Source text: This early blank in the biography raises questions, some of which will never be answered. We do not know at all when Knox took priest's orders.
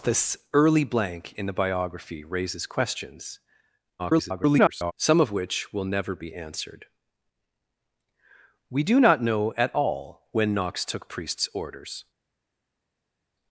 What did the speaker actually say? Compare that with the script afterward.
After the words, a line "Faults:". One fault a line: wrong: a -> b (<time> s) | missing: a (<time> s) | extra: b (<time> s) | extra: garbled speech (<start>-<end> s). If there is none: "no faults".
This early blank in the biography raises questions, [garbled] some of which will never be answered. We do not know at all when Knox took priest's orders.
Faults:
extra: garbled speech (4.0-4.9 s)